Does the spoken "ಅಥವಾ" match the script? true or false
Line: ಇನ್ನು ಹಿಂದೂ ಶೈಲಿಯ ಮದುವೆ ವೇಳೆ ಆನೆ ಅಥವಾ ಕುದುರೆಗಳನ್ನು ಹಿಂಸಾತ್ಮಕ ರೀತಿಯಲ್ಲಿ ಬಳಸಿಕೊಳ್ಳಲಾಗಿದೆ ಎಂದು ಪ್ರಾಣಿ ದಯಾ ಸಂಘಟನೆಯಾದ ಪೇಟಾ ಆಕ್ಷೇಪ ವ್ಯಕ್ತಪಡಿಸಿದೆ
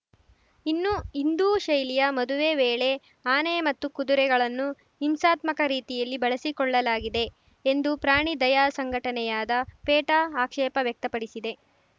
false